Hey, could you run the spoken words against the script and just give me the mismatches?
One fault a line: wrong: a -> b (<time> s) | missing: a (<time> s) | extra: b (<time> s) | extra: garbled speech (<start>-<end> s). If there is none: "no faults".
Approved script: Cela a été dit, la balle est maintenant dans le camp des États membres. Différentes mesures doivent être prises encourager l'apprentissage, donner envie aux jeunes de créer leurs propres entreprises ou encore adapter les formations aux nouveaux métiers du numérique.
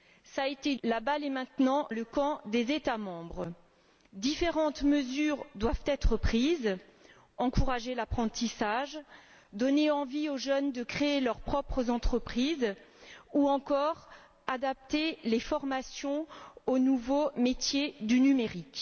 missing: dit (0.8 s)
missing: dans (1.9 s)